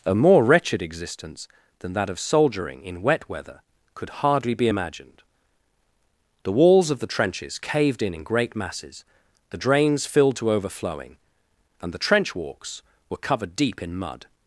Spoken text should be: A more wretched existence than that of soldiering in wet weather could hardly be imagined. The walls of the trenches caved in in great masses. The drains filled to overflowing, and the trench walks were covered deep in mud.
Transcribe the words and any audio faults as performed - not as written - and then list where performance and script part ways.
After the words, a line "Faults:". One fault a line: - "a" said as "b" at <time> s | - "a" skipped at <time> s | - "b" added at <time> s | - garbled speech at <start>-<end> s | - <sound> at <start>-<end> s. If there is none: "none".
A more wretched existence than that of soldiering in wet weather could hardly be imagined. The walls of the trenches caved in in great masses. The drains filled to overflowing, and the trench walks were covered deep in mud.
Faults:
none